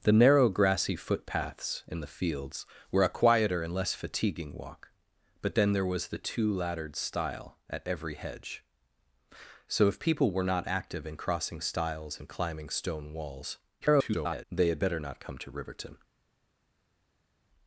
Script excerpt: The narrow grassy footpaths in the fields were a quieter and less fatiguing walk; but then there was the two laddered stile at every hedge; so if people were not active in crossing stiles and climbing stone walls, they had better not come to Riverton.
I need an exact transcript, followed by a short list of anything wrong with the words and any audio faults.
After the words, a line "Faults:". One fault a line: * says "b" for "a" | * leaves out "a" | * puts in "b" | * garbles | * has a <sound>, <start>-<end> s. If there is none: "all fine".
The narrow grassy footpaths in the fields were a quieter and less fatiguing walk; but then there was the two laddered stile at every hedge; so if people were not active in crossing stiles and climbing stone walls, [garbled] they had better not come to Riverton.
Faults:
* garbles